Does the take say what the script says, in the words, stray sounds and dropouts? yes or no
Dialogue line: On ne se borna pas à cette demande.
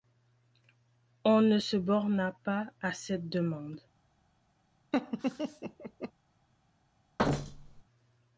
no